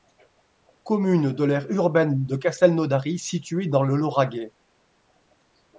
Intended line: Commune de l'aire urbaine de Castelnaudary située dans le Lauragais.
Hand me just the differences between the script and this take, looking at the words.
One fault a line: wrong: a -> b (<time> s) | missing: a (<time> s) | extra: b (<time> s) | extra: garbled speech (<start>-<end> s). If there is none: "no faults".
no faults